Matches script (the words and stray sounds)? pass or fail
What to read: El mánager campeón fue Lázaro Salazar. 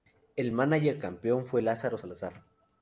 pass